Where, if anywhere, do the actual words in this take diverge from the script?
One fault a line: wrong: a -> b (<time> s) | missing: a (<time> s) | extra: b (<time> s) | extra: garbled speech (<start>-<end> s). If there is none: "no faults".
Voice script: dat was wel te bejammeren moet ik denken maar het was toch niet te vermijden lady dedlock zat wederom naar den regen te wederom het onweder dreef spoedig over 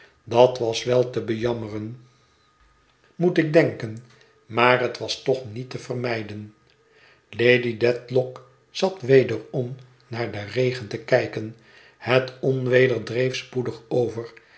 wrong: wederom -> kijken (11.0 s)